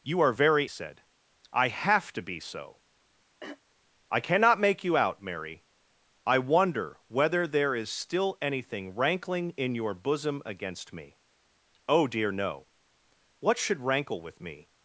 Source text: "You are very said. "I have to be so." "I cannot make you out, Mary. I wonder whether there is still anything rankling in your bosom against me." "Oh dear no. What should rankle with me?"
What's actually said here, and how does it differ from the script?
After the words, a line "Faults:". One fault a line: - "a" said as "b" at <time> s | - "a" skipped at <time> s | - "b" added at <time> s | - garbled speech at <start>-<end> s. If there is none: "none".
"You are very said. "I have to be so." "I cannot make you out, Mary. I wonder whether there is still anything rankling in your bosom against me." "Oh dear no. What should rankle with me?"
Faults:
none